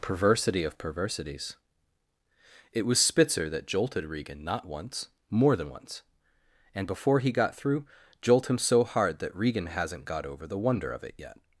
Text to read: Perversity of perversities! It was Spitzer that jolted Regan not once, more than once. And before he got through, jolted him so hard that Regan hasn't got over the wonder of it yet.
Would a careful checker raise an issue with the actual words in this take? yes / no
yes